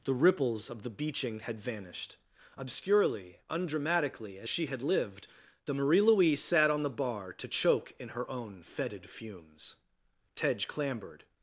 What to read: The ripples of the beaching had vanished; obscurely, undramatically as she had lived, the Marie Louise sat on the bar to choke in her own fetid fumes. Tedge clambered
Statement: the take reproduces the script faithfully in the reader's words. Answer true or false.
true